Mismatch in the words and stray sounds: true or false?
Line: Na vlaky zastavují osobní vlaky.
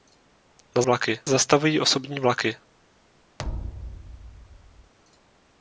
true